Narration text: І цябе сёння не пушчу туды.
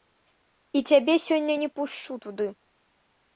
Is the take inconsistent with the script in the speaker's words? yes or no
no